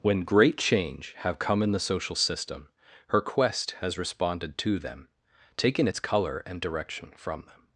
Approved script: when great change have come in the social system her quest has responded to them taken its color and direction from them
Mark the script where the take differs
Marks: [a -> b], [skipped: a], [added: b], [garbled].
when great change have come in the social system her quest has responded to them taken its color and direction from them